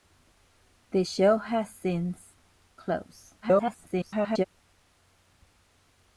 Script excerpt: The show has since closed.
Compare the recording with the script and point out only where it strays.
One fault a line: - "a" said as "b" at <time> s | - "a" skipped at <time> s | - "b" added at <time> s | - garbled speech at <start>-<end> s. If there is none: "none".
- garbled speech at 3.4-4.4 s